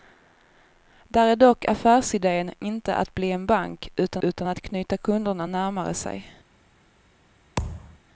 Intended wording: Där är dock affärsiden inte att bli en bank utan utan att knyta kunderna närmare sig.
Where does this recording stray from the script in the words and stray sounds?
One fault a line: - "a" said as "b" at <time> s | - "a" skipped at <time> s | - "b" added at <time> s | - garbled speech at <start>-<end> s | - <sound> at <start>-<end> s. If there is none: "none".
- thud at 7.6-8.0 s